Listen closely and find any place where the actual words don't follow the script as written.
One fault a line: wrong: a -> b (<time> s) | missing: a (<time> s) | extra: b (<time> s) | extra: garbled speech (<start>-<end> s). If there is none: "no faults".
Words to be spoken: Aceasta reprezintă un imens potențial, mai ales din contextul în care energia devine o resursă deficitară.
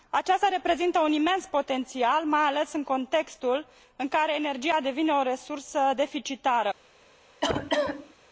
wrong: din -> în (2.7 s)